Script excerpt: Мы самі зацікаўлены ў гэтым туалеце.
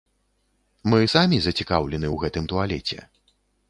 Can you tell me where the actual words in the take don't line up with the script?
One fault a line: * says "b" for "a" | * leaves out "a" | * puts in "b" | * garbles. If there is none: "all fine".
all fine